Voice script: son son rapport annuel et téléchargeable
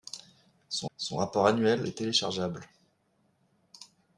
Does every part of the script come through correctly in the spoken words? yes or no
yes